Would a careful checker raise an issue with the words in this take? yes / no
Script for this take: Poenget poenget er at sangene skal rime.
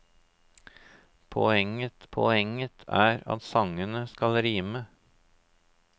no